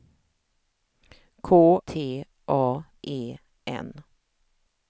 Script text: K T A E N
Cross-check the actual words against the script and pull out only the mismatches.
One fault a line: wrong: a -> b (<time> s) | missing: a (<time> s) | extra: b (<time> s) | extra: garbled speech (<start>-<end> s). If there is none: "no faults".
no faults